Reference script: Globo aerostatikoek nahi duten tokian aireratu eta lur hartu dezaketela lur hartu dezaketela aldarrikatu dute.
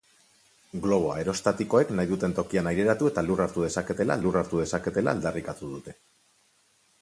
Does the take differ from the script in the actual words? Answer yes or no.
no